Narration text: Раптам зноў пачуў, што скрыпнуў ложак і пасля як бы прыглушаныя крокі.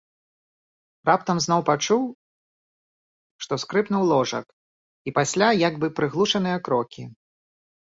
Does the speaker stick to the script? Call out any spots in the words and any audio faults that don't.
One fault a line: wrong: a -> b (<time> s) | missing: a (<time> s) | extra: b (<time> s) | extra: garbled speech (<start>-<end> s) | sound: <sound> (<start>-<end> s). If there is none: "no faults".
no faults